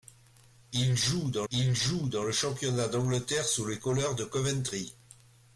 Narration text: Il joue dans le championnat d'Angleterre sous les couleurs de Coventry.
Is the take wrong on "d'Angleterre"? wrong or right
right